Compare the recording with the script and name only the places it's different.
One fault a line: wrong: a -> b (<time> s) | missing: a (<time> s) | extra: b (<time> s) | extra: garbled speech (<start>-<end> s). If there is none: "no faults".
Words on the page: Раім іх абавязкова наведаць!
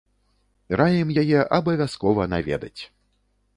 wrong: іх -> яе (1.2 s)